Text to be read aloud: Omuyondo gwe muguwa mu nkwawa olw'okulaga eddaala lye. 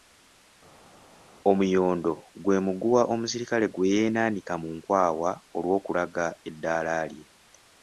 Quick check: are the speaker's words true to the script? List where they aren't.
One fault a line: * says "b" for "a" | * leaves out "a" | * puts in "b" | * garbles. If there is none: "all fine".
* puts in "omusirikale gwe yeenaanika"